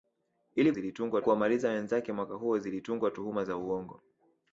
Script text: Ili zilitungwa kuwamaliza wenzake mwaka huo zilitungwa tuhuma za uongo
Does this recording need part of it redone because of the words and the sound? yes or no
no